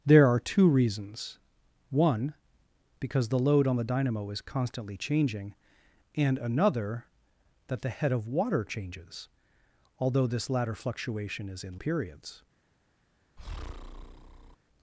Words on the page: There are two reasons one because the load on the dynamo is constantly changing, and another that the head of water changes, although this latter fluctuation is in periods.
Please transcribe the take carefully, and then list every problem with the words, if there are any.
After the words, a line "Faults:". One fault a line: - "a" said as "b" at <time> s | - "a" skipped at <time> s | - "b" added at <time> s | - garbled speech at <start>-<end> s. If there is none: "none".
There are two reasons one because the load on the dynamo is constantly changing, and another that the head of water changes, although this latter fluctuation is in periods.
Faults:
none